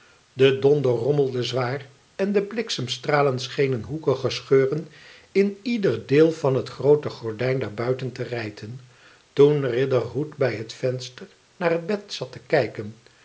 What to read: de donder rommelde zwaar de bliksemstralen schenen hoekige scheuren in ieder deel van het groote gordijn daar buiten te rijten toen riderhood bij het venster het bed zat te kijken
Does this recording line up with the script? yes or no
no